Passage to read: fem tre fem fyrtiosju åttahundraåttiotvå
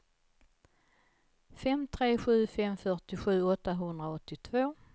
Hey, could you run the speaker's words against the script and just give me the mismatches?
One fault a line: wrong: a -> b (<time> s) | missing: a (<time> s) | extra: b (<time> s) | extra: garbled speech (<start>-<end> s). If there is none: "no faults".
extra: sju (2.2 s)